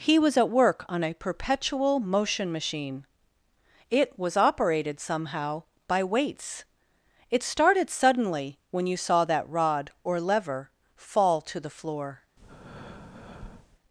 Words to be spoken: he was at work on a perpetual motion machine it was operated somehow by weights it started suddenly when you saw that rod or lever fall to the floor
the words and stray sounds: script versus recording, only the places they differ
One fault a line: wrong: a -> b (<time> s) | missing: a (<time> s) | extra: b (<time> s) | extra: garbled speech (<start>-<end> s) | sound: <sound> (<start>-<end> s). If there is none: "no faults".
sound: breath (12.4-13.8 s)